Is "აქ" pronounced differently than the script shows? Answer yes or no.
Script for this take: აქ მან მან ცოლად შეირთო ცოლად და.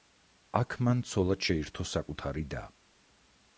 no